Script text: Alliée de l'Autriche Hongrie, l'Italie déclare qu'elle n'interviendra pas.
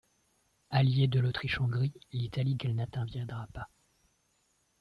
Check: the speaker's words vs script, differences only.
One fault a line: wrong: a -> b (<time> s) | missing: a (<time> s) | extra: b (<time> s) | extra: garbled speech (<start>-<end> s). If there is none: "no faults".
missing: déclare (2.5 s)